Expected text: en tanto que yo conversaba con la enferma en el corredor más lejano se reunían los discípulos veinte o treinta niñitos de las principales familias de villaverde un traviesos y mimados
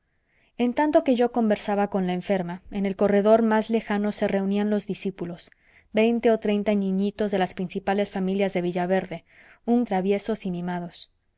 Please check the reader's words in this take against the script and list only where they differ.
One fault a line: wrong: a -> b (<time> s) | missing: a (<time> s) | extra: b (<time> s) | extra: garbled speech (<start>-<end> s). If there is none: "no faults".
no faults